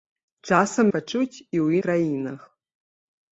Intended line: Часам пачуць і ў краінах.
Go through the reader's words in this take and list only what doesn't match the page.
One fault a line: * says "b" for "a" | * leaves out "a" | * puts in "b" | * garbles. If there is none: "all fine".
all fine